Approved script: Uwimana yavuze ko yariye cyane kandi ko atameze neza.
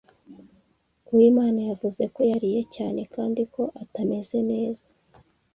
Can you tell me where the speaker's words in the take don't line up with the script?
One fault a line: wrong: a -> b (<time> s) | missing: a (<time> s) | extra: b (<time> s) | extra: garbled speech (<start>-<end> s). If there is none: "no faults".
no faults